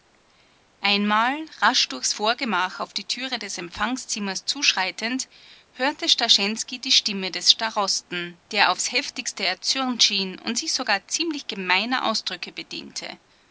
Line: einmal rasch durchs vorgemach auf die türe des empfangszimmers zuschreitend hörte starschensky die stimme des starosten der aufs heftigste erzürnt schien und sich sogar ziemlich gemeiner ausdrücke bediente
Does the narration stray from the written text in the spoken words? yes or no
no